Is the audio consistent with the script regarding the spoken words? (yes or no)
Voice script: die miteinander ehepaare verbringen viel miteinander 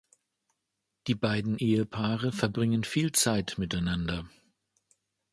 no